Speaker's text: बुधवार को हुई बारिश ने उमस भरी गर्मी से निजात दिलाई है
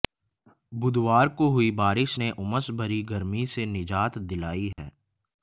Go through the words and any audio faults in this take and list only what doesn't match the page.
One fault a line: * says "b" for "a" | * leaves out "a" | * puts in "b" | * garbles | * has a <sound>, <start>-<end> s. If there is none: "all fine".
* has a dropout, 4.7-4.8 s